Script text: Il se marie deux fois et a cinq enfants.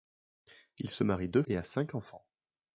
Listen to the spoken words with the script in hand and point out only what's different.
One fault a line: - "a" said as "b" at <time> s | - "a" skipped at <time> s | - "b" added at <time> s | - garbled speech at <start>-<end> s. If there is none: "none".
- "fois" skipped at 1.4 s